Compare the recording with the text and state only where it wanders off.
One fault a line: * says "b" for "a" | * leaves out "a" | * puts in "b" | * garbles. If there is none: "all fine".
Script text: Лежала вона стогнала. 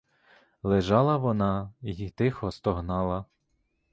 * puts in "й тихо"